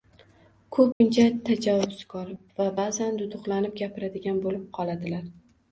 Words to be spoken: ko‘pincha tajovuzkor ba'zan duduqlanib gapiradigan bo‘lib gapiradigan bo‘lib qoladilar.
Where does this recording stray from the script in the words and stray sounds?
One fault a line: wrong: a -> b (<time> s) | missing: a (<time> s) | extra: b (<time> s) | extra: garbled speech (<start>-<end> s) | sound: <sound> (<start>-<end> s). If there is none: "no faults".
sound: dropout (0.9-1.0 s)
extra: va (2.6 s)
missing: gapiradigan bo‘lib (4.7 s)